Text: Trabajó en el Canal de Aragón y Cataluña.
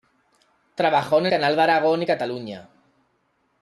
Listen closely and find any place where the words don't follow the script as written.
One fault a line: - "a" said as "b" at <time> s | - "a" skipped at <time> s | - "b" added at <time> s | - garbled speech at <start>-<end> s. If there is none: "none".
- "el" skipped at 1.3 s